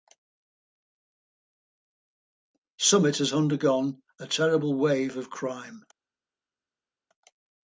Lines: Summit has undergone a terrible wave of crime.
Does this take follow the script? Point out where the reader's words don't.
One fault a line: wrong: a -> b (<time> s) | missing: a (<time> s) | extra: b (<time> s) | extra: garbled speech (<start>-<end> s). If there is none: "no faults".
no faults